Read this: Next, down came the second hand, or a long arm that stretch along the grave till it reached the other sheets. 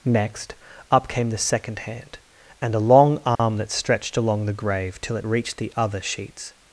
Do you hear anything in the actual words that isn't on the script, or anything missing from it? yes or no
yes